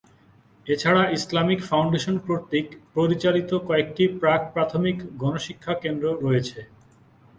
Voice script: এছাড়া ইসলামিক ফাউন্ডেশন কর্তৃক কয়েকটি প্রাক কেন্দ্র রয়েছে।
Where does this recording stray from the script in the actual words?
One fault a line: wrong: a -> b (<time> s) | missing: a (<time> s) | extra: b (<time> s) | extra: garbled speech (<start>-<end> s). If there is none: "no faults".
extra: পরিচালিত (3.0 s)
extra: প্রাথমিক গণশিক্ষা (4.5 s)